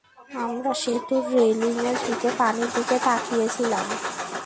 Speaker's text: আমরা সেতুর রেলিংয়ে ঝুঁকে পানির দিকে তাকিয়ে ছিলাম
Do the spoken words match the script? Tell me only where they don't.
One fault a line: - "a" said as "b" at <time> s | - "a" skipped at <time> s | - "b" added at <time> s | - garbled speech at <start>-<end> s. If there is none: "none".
none